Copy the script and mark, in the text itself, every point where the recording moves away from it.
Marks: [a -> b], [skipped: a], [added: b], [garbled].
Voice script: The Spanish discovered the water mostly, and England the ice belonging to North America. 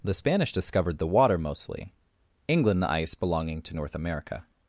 The Spanish discovered the water mostly, [skipped: and] England the ice belonging to North America.